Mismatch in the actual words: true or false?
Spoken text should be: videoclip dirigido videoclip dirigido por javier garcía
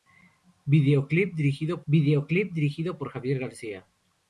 false